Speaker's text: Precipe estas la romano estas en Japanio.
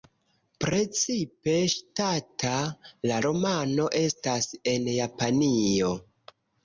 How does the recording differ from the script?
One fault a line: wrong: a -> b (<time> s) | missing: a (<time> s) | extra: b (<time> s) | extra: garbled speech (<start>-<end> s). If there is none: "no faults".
wrong: estas -> ŝatata (1.7 s)